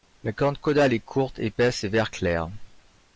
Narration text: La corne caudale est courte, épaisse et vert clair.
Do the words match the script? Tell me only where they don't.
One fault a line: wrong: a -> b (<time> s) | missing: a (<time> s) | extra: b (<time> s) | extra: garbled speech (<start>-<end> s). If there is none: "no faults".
no faults